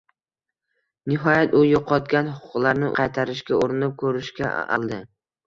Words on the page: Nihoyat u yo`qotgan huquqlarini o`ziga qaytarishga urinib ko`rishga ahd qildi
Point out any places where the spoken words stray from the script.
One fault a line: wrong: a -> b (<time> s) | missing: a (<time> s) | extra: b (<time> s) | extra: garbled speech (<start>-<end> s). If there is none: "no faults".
missing: o`ziga (2.9 s)
missing: ahd (4.5 s)